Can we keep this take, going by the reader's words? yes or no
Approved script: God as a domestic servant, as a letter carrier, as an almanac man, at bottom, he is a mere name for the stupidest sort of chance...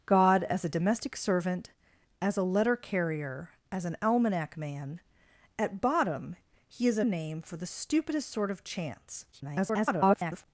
no